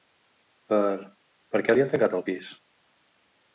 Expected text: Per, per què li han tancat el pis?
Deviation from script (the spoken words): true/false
false